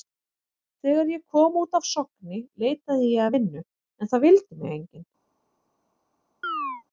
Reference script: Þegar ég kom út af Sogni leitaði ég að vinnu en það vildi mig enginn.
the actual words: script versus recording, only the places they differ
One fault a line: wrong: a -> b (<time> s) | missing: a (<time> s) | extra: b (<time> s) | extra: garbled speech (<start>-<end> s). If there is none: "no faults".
no faults